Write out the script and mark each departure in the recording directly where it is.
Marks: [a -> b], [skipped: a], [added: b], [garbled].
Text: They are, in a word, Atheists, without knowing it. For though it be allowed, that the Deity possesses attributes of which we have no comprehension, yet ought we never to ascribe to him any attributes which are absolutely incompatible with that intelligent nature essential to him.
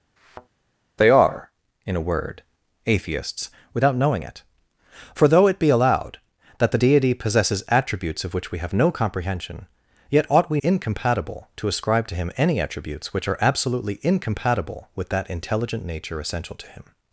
They are, in a word, Atheists, without knowing it. For though it be allowed, that the Deity possesses attributes of which we have no comprehension, yet ought we [never -> incompatible] to ascribe to him any attributes which are absolutely incompatible with that intelligent nature essential to him.